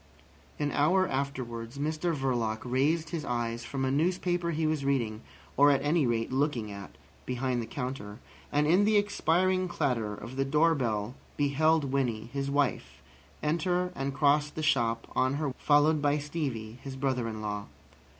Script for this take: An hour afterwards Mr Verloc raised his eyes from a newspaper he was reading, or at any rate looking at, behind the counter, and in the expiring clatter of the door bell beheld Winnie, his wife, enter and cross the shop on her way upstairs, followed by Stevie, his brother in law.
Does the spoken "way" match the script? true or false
false